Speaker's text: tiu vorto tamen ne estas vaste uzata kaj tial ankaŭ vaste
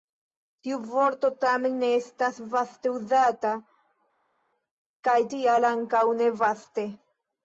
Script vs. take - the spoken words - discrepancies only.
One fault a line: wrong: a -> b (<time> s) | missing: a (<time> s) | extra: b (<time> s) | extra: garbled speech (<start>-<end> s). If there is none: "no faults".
extra: ne (6.2 s)